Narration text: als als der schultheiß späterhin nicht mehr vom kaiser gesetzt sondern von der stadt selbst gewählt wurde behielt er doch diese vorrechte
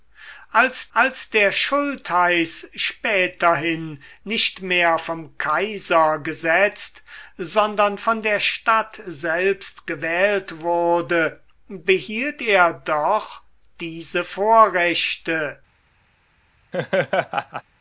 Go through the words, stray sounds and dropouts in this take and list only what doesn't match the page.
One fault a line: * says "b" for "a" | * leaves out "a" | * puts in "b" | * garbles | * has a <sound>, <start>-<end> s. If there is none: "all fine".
* has a laugh, 16.7-17.6 s